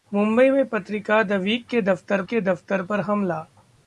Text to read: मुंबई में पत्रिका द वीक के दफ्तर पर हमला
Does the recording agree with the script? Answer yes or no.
no